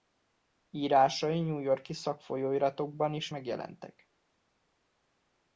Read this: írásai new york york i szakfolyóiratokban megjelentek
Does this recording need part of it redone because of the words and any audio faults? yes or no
yes